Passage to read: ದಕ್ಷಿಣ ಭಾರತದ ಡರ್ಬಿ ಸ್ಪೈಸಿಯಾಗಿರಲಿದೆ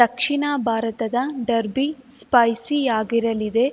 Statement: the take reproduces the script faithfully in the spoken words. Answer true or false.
true